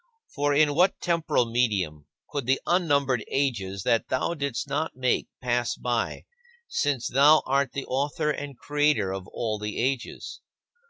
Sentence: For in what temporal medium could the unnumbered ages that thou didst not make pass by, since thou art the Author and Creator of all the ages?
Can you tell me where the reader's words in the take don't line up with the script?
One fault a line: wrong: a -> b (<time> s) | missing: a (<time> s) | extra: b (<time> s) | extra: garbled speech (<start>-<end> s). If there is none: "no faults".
no faults